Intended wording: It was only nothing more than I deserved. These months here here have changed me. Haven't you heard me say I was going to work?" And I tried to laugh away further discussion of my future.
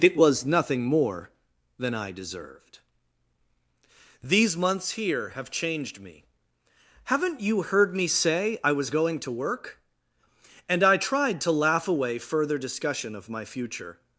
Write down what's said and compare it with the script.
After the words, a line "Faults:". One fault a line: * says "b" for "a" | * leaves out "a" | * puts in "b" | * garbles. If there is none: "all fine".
It was nothing more than I deserved. These months here have changed me. Haven't you heard me say I was going to work?" And I tried to laugh away further discussion of my future.
Faults:
* leaves out "only"
* leaves out "here"